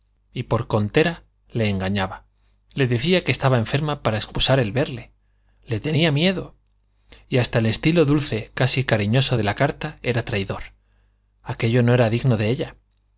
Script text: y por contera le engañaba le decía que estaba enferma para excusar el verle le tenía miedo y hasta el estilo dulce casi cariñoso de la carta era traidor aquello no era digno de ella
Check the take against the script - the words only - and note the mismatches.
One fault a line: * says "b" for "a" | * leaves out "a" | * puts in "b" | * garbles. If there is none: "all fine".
all fine